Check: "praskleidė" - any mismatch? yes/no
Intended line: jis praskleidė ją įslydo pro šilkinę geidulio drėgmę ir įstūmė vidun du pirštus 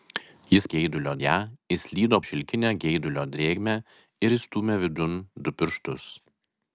yes